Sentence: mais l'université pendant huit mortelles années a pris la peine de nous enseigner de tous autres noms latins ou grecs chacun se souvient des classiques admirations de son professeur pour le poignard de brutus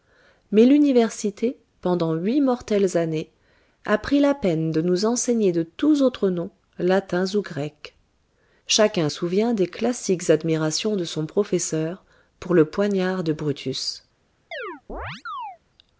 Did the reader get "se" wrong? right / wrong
wrong